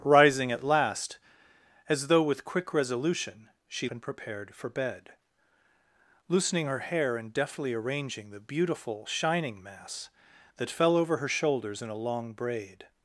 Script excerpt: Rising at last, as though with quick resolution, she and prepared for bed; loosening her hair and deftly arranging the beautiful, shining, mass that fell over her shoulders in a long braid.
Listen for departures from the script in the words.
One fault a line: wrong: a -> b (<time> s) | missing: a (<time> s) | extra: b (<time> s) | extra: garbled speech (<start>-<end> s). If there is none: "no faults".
no faults